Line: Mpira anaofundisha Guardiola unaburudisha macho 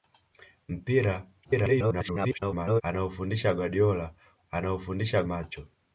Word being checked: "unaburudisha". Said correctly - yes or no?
no